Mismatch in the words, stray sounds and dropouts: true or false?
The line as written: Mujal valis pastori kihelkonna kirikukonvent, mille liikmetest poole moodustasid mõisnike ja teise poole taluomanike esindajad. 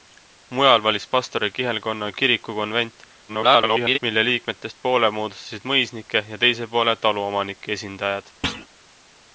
true